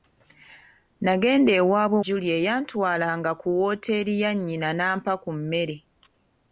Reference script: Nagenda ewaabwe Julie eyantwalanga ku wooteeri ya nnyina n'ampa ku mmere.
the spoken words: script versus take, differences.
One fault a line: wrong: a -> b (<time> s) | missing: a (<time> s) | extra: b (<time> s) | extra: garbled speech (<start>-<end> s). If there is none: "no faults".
no faults